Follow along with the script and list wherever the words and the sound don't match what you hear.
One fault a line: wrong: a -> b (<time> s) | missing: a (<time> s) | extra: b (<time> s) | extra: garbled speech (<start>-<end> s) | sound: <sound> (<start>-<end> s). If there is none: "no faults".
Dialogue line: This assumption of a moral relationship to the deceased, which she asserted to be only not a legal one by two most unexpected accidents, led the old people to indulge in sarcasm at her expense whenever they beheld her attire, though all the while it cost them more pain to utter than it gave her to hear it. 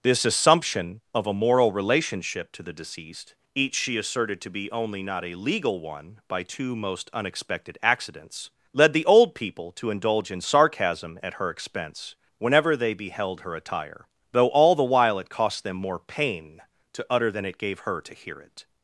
wrong: which -> each (3.5 s)